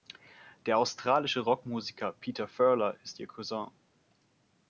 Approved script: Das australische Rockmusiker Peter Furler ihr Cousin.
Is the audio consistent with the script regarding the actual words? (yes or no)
no